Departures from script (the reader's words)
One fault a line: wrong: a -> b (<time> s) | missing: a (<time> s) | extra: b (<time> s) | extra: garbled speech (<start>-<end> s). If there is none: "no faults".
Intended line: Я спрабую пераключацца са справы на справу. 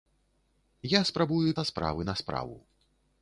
missing: пераключацца (1.5 s)